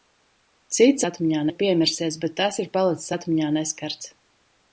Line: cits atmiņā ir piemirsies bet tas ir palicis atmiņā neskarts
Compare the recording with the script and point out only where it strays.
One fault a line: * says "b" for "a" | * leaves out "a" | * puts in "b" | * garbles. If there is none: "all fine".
all fine